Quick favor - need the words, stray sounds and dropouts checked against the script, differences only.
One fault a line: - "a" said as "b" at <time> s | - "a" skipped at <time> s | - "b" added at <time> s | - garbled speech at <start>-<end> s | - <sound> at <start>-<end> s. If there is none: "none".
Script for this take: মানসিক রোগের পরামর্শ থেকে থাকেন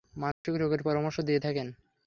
- dropout at 0.3-0.4 s
- "থেকে" said as "দিয়ে" at 1.2 s